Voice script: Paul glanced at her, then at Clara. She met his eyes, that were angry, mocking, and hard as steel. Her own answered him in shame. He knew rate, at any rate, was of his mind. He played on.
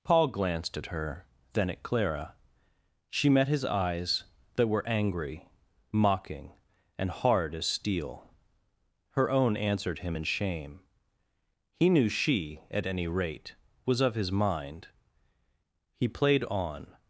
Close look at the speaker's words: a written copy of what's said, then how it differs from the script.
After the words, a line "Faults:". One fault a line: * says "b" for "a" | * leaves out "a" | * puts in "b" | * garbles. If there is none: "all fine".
Paul glanced at her, then at Clara. She met his eyes, that were angry, mocking, and hard as steel. Her own answered him in shame. He knew she, at any rate, was of his mind. He played on.
Faults:
* says "she" for "rate"